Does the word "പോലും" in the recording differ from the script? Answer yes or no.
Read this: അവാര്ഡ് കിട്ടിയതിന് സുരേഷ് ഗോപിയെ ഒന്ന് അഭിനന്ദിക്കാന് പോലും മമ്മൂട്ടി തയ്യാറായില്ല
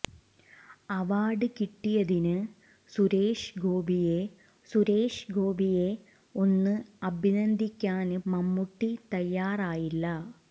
yes